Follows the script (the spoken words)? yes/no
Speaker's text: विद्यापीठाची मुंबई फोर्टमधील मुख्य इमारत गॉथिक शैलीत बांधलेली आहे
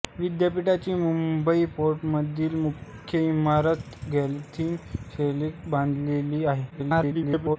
no